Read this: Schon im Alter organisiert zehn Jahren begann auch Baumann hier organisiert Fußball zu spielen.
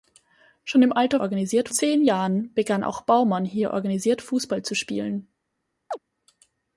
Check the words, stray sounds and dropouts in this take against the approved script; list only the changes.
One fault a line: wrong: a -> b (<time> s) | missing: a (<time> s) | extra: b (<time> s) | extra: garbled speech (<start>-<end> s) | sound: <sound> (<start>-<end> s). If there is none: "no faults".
sound: chirp (5.9-6.0 s)